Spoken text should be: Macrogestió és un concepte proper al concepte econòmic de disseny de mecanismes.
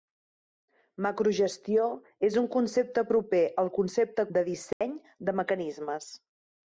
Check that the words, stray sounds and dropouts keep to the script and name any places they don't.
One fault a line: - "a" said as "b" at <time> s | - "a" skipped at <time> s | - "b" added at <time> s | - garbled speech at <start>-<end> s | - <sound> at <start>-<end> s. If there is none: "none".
- "econòmic" skipped at 4.2 s
- dropout at 4.7-4.8 s